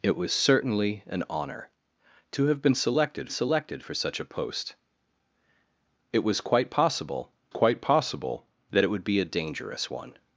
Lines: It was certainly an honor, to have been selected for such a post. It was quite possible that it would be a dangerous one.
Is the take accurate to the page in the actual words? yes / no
no